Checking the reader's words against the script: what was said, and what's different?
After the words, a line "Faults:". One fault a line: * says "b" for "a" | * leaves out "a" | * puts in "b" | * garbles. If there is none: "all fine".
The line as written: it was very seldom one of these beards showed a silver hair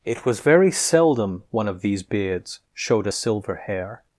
it was very seldom one of these beards showed a silver hair
Faults:
all fine